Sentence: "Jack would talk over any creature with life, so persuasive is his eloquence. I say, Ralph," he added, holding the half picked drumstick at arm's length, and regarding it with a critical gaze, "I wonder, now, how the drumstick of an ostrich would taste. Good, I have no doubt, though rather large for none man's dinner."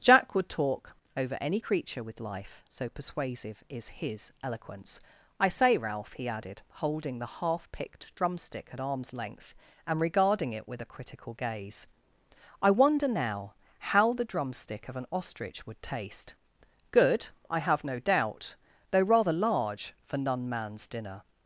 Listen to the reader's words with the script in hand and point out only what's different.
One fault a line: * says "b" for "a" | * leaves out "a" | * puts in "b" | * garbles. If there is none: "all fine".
all fine